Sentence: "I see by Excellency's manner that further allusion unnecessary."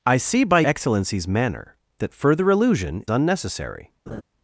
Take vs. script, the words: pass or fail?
pass